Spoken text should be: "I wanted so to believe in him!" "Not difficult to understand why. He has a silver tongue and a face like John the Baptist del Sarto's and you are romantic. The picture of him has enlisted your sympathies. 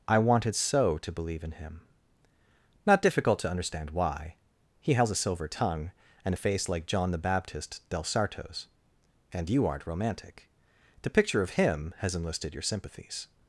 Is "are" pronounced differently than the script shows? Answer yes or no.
yes